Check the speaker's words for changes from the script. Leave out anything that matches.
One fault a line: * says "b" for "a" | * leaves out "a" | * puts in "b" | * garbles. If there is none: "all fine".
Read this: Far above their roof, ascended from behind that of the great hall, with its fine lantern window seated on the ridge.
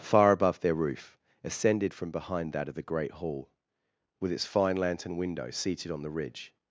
all fine